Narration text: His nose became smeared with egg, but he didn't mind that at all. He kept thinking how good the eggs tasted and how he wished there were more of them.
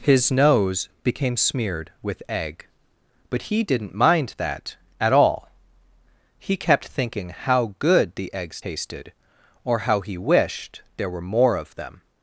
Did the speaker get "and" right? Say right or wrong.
wrong